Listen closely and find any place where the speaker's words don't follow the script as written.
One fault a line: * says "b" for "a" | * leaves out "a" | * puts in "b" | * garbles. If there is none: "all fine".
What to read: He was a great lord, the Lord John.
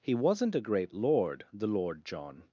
* says "wasn't" for "was"